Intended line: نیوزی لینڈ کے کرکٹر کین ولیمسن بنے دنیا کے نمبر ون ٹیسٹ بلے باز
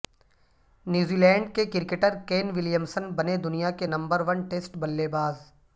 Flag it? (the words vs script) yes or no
no